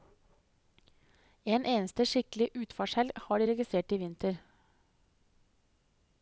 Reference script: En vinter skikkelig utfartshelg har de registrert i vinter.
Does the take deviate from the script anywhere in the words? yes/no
yes